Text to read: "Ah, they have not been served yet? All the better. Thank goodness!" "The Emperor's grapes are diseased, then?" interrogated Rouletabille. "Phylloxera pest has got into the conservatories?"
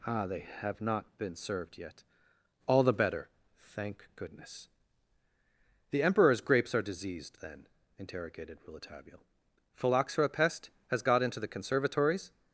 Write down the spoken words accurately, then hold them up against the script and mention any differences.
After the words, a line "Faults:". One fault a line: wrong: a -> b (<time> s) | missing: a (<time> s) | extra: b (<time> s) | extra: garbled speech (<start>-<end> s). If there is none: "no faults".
"Ah, they have not been served yet? All the better. Thank goodness!" "The Emperor's grapes are diseased, then?" interrogated Rouletabille. "Phylloxera pest has got into the conservatories?"
Faults:
no faults